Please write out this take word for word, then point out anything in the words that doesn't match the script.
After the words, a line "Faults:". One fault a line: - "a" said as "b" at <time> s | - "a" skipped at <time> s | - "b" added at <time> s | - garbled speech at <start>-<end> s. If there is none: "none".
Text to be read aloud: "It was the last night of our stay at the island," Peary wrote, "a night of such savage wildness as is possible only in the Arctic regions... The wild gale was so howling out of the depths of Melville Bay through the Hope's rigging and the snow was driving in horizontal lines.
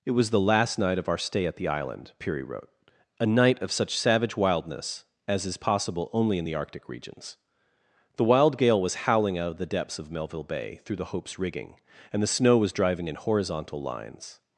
"It was the last night of our stay at the island," Peary wrote, "a night of such savage wildness as is possible only in the Arctic regions... The wild gale was howling out of the depths of Melville Bay through the Hope's rigging and the snow was driving in horizontal lines.
Faults:
- "so" skipped at 9.1 s